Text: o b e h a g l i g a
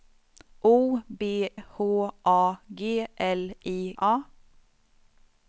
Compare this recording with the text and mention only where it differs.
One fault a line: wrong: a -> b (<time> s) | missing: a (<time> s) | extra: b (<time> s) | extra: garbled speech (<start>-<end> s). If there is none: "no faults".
missing: e (1.5 s)
missing: g (4.0 s)